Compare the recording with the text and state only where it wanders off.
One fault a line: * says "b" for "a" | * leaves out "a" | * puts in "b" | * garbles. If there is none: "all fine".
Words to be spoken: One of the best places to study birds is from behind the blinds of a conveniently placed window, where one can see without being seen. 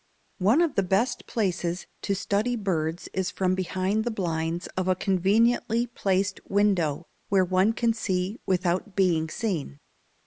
all fine